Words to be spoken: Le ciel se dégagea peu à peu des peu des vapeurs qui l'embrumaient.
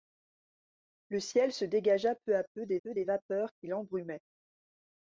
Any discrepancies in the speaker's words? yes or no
no